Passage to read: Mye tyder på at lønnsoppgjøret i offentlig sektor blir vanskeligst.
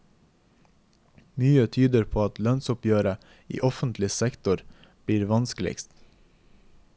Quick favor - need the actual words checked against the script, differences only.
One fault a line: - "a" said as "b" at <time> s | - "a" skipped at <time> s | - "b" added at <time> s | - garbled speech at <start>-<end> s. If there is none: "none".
none